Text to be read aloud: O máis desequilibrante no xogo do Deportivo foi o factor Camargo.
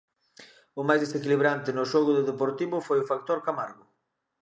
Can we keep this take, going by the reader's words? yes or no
yes